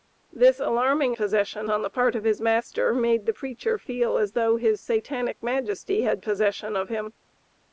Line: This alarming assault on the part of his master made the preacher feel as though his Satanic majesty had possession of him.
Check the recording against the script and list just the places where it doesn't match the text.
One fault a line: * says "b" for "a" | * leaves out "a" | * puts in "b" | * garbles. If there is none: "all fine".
* says "possession" for "assault"